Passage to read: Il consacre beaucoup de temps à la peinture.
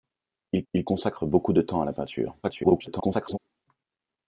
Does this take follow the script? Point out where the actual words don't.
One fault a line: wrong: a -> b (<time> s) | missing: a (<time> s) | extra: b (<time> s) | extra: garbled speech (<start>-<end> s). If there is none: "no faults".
extra: il (0.7 s)
extra: garbled speech (2.4-3.4 s)